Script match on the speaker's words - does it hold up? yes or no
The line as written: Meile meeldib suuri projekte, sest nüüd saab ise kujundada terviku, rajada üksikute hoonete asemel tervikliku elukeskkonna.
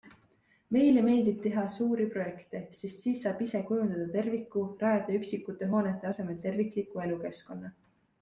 no